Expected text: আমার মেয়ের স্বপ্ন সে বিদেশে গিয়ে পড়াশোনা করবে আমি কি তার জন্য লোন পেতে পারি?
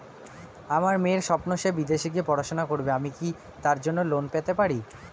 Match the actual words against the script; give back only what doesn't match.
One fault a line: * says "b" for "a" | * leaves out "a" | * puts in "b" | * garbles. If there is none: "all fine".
all fine